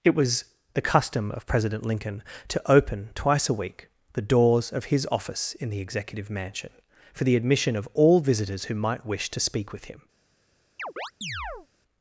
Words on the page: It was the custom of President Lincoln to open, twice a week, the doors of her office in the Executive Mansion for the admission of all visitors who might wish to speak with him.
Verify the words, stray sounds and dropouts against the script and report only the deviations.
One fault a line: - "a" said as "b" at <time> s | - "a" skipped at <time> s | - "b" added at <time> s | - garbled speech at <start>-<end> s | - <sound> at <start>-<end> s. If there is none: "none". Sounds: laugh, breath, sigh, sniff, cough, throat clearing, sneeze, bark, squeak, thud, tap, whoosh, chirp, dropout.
- "her" said as "his" at 4.9 s
- chirp at 10.8-11.7 s